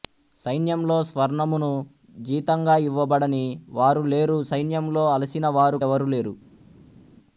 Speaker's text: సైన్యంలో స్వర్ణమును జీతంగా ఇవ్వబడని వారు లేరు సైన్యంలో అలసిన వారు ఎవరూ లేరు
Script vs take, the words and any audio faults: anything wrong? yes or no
no